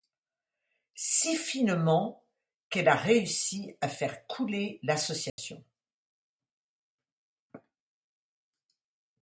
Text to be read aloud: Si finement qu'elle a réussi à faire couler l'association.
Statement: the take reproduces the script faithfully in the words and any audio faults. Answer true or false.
false